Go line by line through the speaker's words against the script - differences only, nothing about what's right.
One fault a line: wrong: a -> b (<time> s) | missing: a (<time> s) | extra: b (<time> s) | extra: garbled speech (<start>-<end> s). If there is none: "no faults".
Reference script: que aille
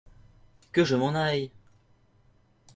extra: je m'en (0.8 s)